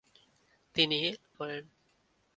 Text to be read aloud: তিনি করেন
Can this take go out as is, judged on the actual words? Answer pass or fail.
pass